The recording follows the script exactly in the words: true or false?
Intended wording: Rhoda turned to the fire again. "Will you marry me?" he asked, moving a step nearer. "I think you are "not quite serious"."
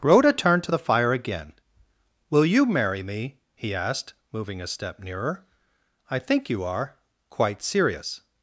false